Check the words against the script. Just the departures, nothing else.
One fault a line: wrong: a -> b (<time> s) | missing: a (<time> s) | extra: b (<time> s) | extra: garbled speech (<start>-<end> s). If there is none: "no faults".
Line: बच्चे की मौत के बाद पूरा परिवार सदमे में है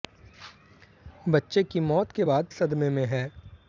missing: पूरा परिवार (2.5 s)